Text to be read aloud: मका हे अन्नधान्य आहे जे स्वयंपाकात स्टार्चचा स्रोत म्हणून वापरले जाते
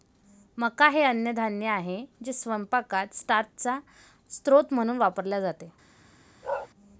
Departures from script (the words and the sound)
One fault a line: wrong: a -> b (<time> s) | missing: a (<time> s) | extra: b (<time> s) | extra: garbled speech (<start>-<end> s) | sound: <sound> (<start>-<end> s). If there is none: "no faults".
sound: bark (6.4-6.7 s)